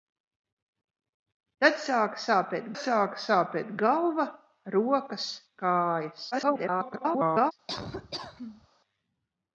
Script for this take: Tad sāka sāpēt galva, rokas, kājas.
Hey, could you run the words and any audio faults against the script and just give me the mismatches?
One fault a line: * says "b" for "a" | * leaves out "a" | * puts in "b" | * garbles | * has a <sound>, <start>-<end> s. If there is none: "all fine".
* puts in "sāka sāpēt"
* garbles
* has a laugh, 7.7-8.7 s